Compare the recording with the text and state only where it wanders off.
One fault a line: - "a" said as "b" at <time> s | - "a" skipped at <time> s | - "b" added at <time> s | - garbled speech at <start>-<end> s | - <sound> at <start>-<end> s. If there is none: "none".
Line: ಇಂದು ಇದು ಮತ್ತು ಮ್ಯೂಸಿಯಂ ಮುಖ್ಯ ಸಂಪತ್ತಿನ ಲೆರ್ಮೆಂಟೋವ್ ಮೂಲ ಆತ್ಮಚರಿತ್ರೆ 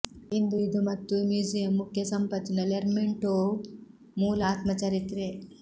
none